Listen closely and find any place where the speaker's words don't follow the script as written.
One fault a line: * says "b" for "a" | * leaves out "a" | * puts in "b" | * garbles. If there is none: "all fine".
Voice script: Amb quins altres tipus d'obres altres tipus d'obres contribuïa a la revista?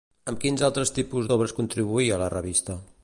* leaves out "altres tipus d'obres"